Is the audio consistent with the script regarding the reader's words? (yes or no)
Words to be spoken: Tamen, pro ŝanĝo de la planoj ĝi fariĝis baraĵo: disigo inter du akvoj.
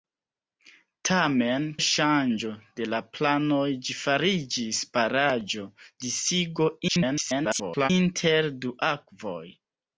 no